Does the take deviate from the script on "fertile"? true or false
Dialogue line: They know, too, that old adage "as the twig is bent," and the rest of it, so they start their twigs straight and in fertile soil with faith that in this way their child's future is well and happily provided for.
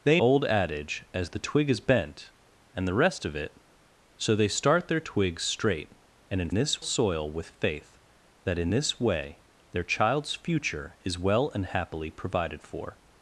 true